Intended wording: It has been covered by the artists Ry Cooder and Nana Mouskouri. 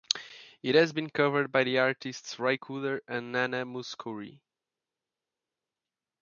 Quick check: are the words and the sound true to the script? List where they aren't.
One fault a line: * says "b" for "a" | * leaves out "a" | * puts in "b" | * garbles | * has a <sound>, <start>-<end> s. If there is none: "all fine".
all fine